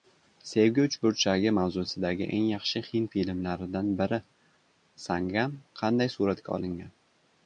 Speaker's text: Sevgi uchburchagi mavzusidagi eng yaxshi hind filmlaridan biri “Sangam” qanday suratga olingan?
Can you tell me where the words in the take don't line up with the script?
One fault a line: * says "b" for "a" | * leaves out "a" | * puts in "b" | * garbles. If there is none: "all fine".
all fine